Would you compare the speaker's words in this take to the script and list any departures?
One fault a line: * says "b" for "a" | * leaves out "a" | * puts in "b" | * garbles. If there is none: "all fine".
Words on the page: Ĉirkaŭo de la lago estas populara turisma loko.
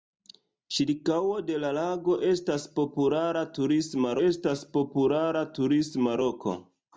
* puts in "estas populara turisma"